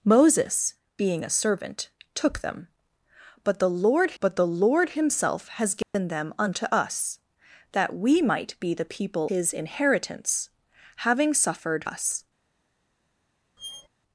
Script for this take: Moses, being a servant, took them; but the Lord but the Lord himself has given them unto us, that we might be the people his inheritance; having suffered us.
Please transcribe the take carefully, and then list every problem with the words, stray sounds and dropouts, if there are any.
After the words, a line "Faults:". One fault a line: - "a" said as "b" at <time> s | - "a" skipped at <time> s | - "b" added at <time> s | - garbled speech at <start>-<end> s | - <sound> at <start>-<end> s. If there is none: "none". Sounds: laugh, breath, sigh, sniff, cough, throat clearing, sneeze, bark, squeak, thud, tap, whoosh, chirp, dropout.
Moses, being a servant, took them; but the Lord but the Lord himself has given them unto us, that we might be the people his inheritance; having suffered us.
Faults:
- dropout at 5.8-5.9 s
- squeak at 13.6-13.9 s